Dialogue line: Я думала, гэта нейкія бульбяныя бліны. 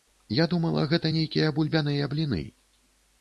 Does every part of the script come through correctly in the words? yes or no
yes